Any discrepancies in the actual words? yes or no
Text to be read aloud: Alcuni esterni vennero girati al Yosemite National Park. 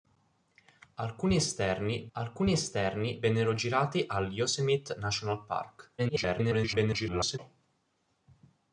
yes